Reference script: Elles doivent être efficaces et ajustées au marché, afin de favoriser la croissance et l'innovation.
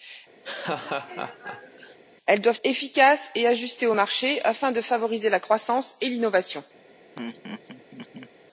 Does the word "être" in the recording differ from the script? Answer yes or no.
yes